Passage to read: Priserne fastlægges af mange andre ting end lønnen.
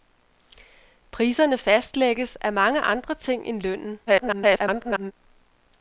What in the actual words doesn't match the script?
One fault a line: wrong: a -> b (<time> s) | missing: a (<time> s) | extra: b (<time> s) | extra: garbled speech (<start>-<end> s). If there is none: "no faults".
extra: garbled speech (4.1-5.1 s)